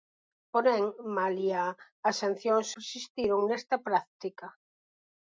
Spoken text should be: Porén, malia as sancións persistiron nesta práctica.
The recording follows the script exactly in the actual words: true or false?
true